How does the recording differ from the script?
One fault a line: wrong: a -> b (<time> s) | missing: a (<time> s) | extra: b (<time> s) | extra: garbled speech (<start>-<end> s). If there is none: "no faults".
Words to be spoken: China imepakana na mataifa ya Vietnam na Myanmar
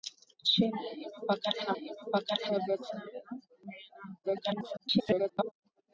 wrong: mataifa -> imepakana (1.8 s)
extra: garbled speech (4.2-5.5 s)